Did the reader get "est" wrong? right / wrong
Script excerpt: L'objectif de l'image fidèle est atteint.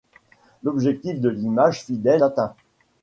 wrong